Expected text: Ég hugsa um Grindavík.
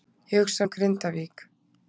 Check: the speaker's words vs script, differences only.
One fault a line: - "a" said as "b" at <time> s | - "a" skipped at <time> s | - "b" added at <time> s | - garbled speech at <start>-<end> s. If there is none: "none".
none